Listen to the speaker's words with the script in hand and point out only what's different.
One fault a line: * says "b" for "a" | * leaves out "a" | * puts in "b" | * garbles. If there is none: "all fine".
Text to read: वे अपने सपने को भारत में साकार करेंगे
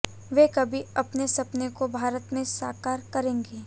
* puts in "कभी"